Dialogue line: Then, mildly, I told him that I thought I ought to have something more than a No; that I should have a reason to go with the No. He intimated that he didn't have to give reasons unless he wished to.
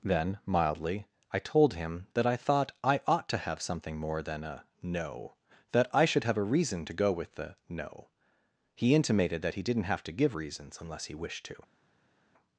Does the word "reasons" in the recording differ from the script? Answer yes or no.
no